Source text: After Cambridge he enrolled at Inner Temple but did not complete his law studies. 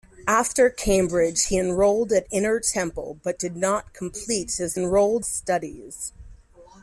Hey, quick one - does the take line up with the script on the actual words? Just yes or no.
no